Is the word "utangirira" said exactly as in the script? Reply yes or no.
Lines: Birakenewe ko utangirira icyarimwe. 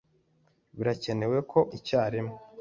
no